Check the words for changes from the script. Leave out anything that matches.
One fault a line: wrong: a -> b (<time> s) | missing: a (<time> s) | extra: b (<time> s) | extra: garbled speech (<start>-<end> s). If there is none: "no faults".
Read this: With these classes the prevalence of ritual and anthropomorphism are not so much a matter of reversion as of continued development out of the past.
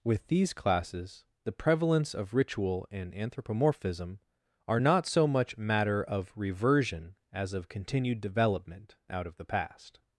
missing: a (5.6 s)